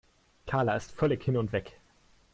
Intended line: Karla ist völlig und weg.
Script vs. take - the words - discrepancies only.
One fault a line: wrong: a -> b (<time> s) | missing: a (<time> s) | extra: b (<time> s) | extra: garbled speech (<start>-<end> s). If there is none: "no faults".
extra: hin (1.2 s)